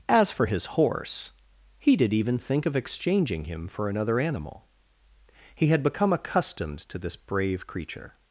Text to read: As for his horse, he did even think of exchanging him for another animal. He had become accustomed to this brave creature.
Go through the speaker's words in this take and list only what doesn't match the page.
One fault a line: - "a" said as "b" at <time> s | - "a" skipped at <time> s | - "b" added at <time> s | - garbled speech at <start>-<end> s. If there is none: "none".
none